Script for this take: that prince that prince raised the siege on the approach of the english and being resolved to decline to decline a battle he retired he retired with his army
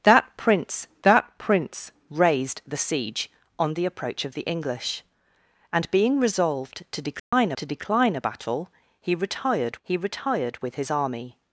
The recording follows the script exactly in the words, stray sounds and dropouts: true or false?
false